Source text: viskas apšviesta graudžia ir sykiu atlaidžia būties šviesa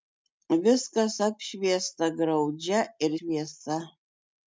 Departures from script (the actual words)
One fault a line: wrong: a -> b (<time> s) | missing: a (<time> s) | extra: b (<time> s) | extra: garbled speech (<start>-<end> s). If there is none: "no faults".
missing: sykiu atlaidžia būties (3.1 s)